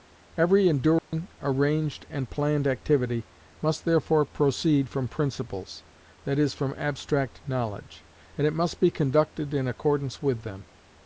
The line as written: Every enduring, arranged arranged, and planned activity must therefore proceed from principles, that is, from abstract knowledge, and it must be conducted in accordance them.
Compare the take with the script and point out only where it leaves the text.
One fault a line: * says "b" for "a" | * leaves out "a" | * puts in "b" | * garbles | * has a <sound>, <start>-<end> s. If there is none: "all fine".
* has a dropout, 1.0-1.1 s
* leaves out "arranged"
* puts in "with"